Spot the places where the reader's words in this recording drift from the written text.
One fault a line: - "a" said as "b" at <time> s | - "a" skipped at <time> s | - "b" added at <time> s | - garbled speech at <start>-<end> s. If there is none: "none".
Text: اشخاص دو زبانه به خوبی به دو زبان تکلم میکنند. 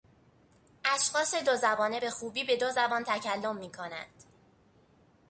none